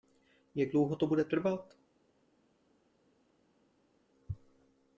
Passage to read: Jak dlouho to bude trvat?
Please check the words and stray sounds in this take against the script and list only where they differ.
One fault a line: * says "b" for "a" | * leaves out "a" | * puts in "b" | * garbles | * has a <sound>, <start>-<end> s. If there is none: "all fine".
all fine